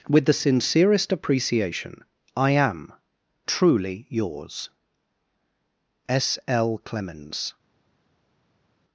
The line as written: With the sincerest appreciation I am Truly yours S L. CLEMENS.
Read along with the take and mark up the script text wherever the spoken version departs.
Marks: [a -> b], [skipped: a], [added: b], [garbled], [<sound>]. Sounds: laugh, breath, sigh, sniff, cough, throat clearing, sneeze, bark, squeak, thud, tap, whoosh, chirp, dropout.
With the sincerest appreciation I am Truly yours S L. CLEMENS.